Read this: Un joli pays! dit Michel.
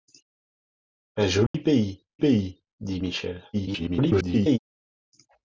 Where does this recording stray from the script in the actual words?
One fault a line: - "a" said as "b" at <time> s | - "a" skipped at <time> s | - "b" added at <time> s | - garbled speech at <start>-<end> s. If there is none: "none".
- "pays" added at 2.2 s
- garbled speech at 3.5-4.6 s